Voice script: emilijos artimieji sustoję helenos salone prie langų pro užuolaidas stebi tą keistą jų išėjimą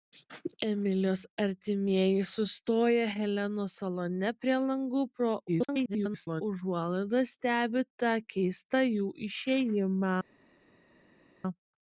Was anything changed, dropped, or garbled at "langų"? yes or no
no